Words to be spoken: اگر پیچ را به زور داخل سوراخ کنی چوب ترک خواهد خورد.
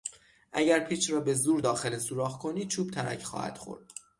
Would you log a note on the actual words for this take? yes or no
no